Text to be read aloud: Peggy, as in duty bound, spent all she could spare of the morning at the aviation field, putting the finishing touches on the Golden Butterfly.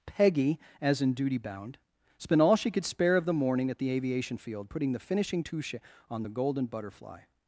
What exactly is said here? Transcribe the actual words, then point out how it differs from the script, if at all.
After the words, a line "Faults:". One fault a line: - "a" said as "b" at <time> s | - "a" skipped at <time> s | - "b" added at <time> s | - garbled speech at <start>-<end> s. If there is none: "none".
Peggy, as in duty bound, spent all she could spare of the morning at the aviation field, putting the finishing touche on the Golden Butterfly.
Faults:
- "touches" said as "touche" at 5.4 s